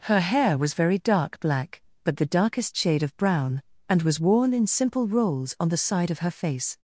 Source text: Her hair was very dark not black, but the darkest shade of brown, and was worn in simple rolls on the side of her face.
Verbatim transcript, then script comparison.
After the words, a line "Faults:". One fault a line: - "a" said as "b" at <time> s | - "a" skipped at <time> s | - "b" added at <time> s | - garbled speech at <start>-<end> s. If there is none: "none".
Her hair was very dark black, but the darkest shade of brown, and was worn in simple rolls on the side of her face.
Faults:
- "not" skipped at 1.4 s